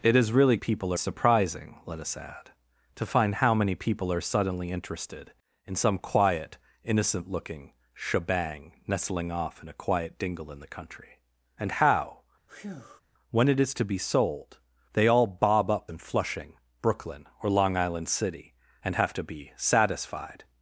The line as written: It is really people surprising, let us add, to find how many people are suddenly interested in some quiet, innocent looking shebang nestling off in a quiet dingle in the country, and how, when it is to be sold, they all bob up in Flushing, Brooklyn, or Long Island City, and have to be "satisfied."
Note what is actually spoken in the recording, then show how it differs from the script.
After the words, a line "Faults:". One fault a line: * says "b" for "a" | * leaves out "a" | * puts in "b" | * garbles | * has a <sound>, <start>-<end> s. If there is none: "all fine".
It is really people surprising, let us add, to find how many people are suddenly interested in some quiet, innocent looking shebang nestling off in a quiet dingle in the country, and how, when it is to be sold, they all bob up in Flushing, Brooklyn, or Long Island City, and have to be "satisfied."
Faults:
* has a breath, 12.5-13.0 s